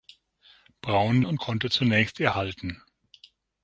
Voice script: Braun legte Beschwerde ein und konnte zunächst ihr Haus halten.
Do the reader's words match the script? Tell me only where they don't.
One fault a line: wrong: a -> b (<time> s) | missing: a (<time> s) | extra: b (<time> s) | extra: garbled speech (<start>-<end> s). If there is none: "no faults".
missing: legte Beschwerde ein (1.2 s)
missing: Haus (2.3 s)